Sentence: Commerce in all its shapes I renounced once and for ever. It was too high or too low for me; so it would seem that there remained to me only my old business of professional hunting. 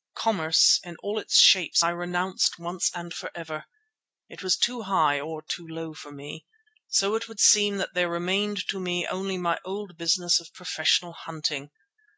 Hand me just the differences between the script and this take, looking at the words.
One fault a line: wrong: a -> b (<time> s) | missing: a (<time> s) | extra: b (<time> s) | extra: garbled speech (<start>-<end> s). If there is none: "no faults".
no faults